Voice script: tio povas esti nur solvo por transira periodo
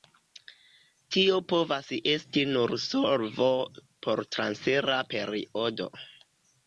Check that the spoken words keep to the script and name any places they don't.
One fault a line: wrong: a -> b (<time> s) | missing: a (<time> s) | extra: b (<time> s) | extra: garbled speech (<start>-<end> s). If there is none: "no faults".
no faults